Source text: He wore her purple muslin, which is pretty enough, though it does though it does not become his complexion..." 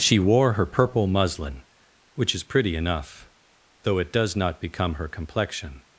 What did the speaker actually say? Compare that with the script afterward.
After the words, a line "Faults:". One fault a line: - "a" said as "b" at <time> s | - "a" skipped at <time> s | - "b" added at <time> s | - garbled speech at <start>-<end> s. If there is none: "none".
She wore her purple muslin, which is pretty enough, though it does not become her complexion..."
Faults:
- "He" said as "She" at 0.0 s
- "though it does" skipped at 4.3 s
- "his" said as "her" at 4.9 s